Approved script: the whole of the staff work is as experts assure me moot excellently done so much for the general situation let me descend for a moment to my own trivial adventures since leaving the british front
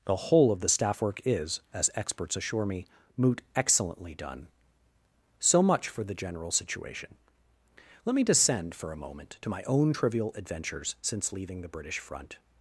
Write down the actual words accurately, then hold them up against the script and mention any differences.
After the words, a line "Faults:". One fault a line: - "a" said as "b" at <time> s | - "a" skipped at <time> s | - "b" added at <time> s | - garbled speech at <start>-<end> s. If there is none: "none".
the whole of the staff work is as experts assure me moot excellently done so much for the general situation let me descend for a moment to my own trivial adventures since leaving the british front
Faults:
none